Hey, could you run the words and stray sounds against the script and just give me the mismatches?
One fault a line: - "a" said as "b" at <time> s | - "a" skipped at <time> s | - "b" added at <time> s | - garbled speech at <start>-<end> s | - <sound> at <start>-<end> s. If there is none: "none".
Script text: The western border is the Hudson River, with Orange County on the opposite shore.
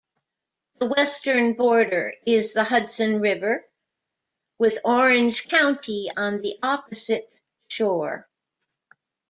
none